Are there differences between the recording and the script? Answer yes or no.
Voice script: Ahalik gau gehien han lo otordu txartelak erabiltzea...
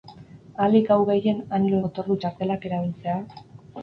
no